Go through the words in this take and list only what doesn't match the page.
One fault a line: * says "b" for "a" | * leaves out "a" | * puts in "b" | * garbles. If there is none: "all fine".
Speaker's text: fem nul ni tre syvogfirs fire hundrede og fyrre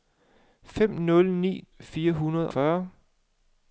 * leaves out "tre syvogfirs"
* leaves out "og"